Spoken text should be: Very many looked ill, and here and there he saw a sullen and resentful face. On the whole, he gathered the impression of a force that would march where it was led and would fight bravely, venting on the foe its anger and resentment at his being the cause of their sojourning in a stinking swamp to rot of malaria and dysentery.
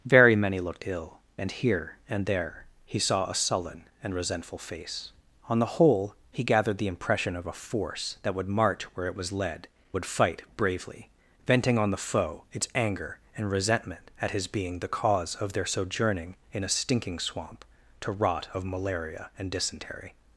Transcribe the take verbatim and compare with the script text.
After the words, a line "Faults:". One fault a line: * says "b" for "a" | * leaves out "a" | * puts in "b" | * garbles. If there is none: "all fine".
Very many looked ill, and here and there he saw a sullen and resentful face. On the whole, he gathered the impression of a force that would march where it was led would fight bravely, venting on the foe its anger and resentment at his being the cause of their sojourning in a stinking swamp to rot of malaria and dysentery.
Faults:
* leaves out "and"